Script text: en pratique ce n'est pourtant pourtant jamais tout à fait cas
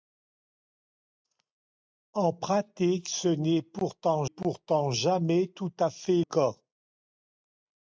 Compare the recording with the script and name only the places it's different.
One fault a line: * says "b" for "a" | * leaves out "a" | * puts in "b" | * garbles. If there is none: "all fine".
all fine